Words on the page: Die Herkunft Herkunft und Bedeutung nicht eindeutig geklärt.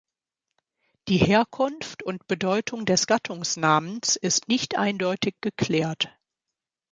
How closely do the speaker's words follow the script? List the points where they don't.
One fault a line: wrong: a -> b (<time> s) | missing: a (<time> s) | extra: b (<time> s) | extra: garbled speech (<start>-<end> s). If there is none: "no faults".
missing: Herkunft (2.0 s)
extra: des Gattungsnamens ist (2.9 s)